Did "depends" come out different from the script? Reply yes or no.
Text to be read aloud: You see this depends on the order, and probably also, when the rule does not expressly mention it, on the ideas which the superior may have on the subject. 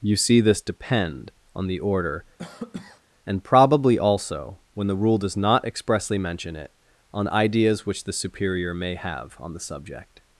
yes